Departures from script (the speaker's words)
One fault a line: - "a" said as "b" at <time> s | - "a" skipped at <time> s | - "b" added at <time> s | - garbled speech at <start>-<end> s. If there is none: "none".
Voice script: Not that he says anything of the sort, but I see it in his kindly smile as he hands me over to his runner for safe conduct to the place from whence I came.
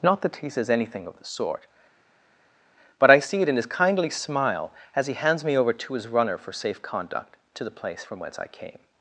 none